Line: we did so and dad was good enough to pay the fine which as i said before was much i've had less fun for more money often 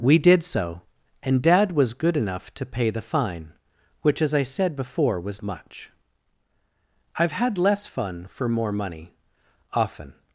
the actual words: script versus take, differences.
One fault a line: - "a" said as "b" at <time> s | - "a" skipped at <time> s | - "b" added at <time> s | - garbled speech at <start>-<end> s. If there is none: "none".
none